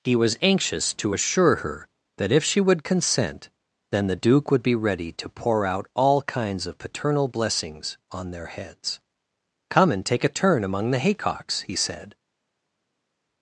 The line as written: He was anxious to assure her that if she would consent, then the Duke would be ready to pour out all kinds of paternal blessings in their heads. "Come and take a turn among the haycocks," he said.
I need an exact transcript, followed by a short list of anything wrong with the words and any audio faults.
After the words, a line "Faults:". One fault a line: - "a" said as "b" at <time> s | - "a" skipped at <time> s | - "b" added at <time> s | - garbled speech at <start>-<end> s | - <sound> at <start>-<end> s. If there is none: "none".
He was anxious to assure her that if she would consent, then the Duke would be ready to pour out all kinds of paternal blessings on their heads. "Come and take a turn among the haycocks," he said.
Faults:
- "in" said as "on" at 8.1 s